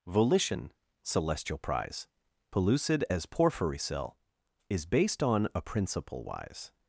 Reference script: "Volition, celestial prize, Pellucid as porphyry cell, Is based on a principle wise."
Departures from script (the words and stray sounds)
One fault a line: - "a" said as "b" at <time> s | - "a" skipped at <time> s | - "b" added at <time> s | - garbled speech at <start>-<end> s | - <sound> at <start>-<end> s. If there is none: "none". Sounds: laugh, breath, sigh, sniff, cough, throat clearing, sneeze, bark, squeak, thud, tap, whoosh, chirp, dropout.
none